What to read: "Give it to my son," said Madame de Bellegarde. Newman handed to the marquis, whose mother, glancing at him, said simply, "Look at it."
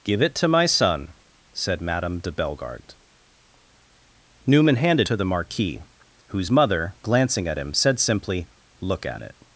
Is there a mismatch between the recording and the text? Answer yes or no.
no